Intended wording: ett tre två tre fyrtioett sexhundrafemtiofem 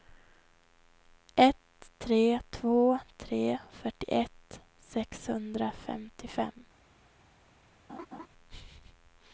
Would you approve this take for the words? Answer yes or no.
yes